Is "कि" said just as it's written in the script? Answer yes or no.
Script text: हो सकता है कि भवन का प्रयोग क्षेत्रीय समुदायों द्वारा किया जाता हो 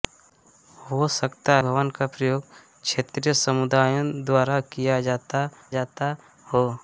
no